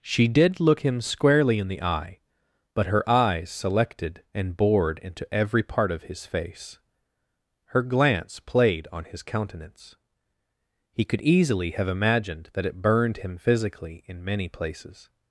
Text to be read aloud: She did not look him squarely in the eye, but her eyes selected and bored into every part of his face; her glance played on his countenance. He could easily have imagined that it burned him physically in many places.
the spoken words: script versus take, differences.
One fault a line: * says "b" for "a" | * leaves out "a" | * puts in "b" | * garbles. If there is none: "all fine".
* leaves out "not"